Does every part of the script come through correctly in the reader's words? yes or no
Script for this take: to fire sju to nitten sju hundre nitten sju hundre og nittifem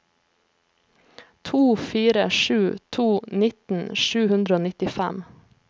no